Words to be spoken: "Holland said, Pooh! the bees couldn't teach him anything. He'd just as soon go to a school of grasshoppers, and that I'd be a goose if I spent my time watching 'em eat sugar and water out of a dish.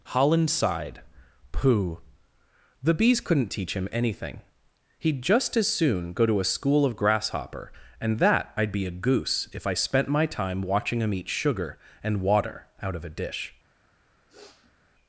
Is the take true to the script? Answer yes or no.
no